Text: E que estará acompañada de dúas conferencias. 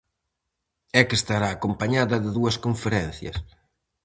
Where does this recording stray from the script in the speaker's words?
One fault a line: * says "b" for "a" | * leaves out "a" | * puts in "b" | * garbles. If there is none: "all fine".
all fine